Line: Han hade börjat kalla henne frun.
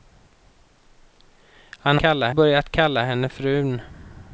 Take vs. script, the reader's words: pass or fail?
fail